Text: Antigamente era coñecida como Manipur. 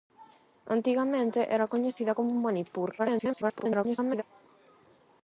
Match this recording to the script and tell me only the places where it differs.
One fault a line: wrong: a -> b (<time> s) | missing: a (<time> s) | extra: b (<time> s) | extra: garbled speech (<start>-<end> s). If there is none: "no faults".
extra: garbled speech (3.0-4.2 s)